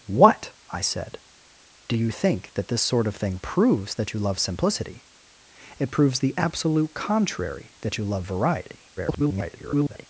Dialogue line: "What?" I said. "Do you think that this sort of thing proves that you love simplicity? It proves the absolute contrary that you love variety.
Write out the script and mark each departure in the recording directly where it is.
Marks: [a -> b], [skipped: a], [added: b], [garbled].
"What?" I said. "Do you think that this sort of thing proves that you love simplicity? It proves the absolute contrary that you love variety. [garbled]